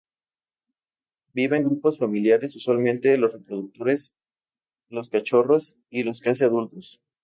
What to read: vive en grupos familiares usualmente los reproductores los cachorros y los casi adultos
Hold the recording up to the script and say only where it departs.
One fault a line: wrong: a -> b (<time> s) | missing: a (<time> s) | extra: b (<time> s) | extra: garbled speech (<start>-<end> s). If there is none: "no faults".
no faults